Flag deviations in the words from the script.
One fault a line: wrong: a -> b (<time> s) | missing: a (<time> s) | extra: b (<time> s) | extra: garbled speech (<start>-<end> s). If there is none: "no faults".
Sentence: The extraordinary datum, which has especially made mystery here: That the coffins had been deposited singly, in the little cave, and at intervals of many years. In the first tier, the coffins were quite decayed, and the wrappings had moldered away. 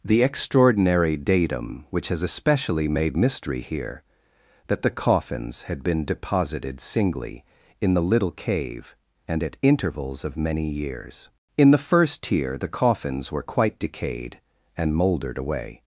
missing: the wrappings had (14.9 s)